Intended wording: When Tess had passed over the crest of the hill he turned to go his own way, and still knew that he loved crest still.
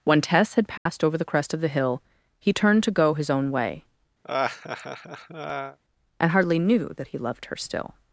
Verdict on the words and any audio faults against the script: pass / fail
fail